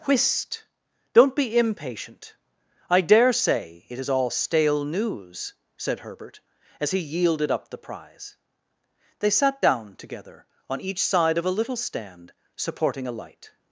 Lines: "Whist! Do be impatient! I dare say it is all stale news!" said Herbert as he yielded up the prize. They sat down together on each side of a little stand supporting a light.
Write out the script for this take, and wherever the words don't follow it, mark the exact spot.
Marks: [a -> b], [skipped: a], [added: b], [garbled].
"Whist! [Do -> Don't] be impatient! I dare say it is all stale news!" said Herbert as he yielded up the prize. They sat down together on each side of a little stand supporting a light.